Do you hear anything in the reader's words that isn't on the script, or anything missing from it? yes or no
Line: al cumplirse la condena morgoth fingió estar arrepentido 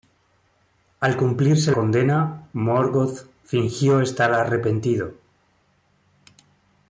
yes